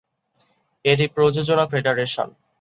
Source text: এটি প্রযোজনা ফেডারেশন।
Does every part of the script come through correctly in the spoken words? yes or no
yes